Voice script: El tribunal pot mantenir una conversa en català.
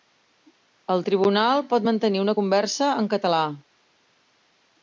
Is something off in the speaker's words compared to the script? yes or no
no